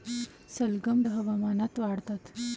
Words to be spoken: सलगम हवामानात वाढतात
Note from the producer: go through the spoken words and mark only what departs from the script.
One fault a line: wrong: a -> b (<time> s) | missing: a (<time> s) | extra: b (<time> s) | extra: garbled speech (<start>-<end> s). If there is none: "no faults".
no faults